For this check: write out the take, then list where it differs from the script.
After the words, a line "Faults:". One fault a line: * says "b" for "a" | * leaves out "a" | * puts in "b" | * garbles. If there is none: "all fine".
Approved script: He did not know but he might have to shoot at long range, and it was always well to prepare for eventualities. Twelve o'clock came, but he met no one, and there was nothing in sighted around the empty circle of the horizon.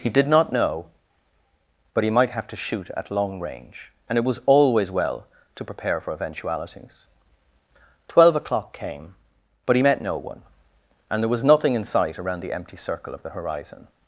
He did not know but he might have to shoot at long range, and it was always well to prepare for eventualities. Twelve o'clock came, but he met no one, and there was nothing in sight around the empty circle of the horizon.
Faults:
* says "sight" for "sighted"